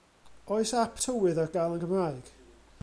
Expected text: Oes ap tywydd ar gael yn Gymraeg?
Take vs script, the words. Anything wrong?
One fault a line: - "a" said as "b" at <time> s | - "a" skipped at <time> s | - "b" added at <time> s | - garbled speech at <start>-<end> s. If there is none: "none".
none